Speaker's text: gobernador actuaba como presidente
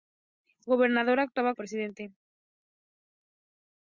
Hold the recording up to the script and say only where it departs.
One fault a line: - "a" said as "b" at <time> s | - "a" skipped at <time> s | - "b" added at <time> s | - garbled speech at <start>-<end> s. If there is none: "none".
- "como" skipped at 1.5 s